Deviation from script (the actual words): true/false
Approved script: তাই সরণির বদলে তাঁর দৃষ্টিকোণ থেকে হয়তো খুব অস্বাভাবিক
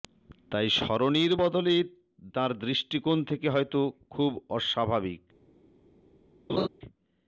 false